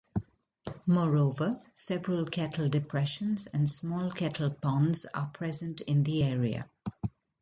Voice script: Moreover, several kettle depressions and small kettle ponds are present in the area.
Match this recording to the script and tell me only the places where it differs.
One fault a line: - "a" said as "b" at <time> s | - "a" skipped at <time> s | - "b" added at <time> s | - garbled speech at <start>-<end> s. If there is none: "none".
none